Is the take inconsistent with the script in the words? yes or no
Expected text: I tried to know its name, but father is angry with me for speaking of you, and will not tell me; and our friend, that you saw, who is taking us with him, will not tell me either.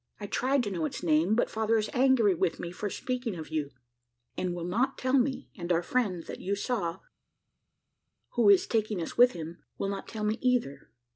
no